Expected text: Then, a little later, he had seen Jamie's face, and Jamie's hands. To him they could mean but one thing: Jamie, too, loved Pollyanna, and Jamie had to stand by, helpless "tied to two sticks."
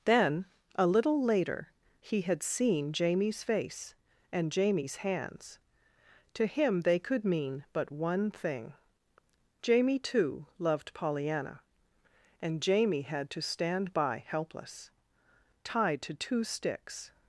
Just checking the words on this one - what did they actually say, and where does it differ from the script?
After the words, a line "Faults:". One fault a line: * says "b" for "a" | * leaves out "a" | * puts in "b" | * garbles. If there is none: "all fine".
Then, a little later, he had seen Jamie's face, and Jamie's hands. To him they could mean but one thing: Jamie, too, loved Pollyanna, and Jamie had to stand by, helpless "tied to two sticks."
Faults:
all fine